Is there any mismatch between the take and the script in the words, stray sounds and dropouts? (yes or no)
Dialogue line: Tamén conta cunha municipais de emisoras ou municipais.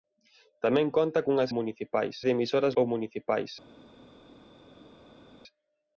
no